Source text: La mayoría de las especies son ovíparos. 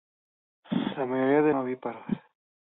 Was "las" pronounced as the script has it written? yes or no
no